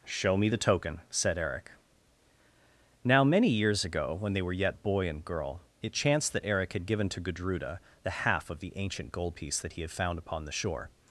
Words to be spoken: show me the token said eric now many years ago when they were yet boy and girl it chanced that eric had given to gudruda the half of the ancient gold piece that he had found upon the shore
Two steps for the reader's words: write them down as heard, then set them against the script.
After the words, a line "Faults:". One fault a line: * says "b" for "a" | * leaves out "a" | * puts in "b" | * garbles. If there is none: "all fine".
show me the token said eric now many years ago when they were yet boy and girl it chanced that eric had given to gudruda the half of the ancient gold piece that he had found upon the shore
Faults:
all fine